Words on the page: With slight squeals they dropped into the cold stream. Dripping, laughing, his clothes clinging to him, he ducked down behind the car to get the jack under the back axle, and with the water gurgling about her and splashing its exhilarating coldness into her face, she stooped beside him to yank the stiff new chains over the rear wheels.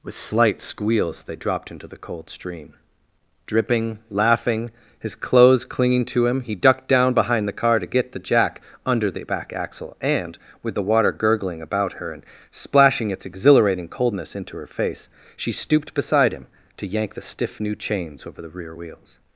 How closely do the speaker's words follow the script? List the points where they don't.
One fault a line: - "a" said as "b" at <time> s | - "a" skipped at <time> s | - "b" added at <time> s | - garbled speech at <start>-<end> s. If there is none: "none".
none